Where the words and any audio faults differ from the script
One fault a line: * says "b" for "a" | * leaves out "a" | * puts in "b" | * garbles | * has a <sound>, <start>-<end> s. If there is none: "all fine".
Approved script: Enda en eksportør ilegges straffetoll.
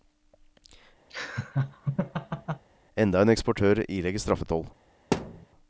* has a laugh, 1.1-2.6 s
* has a thud, 5.1-5.5 s